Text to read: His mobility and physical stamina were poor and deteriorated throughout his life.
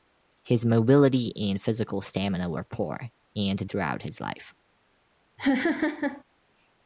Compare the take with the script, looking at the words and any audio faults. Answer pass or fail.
fail